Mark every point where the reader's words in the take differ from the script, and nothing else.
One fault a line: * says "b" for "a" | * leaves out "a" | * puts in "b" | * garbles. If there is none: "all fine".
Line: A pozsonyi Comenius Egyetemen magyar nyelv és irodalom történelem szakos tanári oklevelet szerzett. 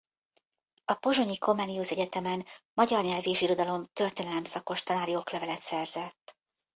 all fine